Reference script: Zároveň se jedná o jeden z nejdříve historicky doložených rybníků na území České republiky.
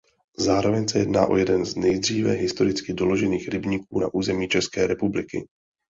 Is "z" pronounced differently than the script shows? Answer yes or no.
no